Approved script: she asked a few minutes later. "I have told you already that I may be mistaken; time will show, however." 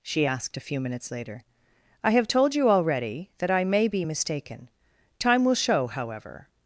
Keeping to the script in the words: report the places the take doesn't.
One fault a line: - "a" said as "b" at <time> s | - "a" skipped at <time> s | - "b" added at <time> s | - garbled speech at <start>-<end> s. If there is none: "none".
none